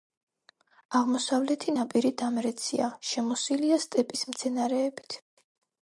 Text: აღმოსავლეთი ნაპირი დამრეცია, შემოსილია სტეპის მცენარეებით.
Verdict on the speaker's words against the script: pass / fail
pass